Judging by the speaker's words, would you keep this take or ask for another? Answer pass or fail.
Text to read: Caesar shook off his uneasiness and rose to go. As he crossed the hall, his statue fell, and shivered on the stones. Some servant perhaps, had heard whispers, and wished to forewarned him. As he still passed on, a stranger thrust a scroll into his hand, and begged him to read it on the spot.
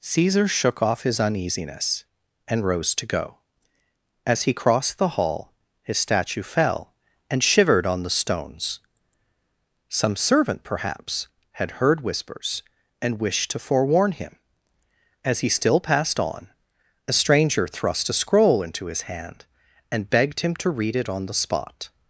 fail